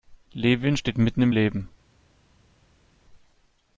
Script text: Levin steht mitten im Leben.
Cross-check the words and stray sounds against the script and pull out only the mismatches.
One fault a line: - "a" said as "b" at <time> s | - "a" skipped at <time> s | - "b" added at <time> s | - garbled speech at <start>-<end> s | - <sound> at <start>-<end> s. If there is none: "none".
none